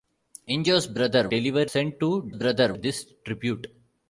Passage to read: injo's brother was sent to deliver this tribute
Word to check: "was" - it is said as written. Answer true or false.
false